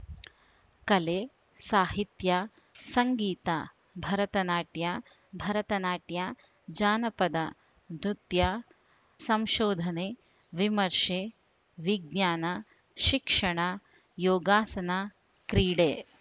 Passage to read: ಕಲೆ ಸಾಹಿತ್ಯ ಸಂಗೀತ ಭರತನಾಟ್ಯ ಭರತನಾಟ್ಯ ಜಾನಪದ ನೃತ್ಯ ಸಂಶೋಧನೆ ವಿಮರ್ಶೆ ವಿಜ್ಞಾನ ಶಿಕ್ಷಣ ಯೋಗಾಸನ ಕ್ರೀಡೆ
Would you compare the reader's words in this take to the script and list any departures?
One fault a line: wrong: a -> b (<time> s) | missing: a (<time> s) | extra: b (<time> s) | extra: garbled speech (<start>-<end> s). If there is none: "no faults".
no faults